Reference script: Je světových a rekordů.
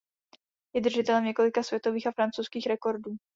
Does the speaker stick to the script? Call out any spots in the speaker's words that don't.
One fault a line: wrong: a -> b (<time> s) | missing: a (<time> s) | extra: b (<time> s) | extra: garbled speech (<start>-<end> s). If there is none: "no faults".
extra: držitelem několika (0.8 s)
extra: francouzských (2.1 s)